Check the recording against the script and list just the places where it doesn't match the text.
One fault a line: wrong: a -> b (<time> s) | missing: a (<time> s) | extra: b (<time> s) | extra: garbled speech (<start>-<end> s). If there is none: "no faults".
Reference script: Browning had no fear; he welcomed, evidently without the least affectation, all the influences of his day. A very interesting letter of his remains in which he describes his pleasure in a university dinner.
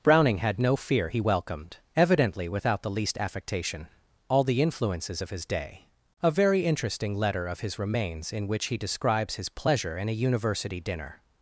no faults